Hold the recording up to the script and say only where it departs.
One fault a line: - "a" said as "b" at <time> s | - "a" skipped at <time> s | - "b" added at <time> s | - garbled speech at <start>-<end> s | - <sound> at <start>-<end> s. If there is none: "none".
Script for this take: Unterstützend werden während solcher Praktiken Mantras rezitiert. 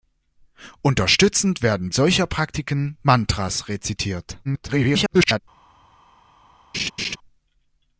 - "während" skipped at 1.9 s
- garbled speech at 4.4-5.4 s
- laugh at 6.7-7.2 s